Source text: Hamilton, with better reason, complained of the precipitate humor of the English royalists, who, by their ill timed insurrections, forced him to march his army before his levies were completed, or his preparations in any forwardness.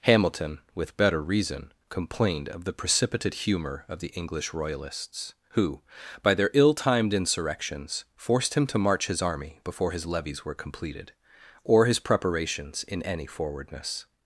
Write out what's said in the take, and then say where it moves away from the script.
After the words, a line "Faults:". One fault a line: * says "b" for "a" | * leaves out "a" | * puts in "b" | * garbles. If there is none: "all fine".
Hamilton, with better reason, complained of the precipitate humor of the English royalists, who, by their ill timed insurrections, forced him to march his army before his levies were completed, or his preparations in any forwardness.
Faults:
all fine